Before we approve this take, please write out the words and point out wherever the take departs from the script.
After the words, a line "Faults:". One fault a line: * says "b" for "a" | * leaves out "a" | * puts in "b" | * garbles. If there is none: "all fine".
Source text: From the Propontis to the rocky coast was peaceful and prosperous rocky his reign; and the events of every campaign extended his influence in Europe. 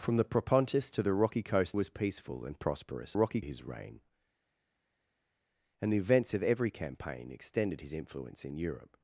From the Propontis to the rocky coast was peaceful and prosperous rocky his reign; and the events of every campaign extended his influence in Europe.
Faults:
all fine